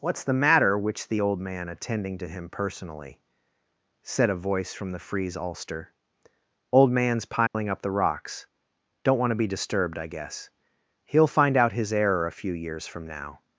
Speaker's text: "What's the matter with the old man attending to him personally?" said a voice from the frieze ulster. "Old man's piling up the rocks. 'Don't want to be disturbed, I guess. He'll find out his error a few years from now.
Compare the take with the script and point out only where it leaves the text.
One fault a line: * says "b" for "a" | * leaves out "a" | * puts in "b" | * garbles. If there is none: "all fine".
* says "which" for "with"